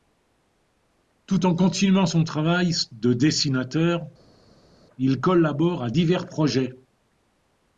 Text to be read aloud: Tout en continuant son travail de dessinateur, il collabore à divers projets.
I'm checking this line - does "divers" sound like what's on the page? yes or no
yes